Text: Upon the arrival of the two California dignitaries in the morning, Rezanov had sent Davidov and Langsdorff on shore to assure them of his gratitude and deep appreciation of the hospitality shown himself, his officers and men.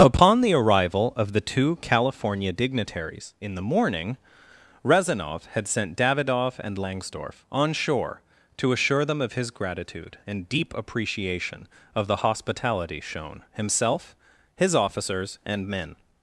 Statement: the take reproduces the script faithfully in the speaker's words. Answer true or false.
true